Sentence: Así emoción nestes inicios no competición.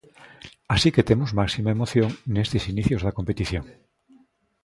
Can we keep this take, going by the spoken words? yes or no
no